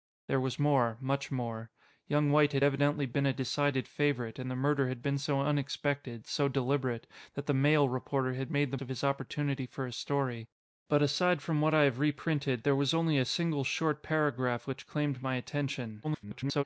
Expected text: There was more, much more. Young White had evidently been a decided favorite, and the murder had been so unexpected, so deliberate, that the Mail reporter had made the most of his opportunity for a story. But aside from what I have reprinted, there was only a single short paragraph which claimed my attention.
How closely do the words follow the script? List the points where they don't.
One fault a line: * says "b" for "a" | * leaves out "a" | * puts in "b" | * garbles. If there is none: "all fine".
* leaves out "most"
* garbles